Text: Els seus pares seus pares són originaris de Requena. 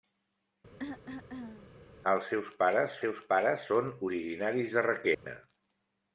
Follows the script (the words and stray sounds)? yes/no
no